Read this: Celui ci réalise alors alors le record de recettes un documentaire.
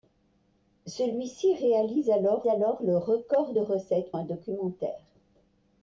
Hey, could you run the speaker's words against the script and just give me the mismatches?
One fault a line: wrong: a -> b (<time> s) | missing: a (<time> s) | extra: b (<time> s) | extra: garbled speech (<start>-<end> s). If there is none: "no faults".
no faults